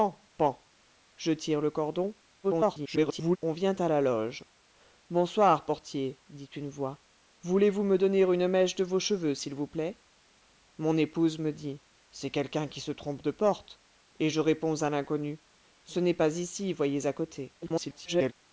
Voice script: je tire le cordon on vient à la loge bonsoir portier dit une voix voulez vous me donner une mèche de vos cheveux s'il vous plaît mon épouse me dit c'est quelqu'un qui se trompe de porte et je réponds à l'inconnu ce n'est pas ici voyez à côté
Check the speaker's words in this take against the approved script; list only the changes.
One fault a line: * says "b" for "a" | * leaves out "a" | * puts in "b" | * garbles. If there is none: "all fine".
* garbles
* garbles